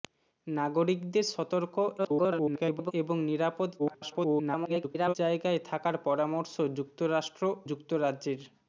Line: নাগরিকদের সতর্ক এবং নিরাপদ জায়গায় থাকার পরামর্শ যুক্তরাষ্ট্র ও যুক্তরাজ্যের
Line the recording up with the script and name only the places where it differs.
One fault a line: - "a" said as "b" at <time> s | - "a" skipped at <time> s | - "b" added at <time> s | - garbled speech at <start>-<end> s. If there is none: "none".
- garbled speech at 2.0-2.9 s
- garbled speech at 3.8-5.1 s
- "ও" skipped at 7.4 s